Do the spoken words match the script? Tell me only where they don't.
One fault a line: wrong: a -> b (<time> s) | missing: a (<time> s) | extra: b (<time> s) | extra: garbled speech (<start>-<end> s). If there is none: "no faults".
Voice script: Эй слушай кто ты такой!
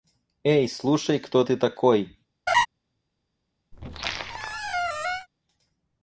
no faults